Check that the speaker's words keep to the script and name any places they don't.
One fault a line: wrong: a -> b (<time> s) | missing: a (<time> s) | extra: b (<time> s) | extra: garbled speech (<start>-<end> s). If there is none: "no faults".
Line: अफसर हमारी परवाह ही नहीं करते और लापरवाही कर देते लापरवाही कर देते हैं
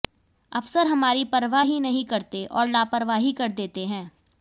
missing: लापरवाही कर देते (3.9 s)